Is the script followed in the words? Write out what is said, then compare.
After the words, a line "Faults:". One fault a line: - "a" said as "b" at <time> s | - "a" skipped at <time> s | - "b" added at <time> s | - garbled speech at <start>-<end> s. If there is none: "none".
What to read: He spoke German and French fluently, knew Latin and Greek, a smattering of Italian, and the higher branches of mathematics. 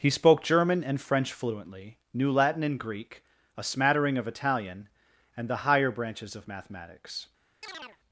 He spoke German and French fluently, knew Latin and Greek, a smattering of Italian, and the higher branches of mathematics.
Faults:
none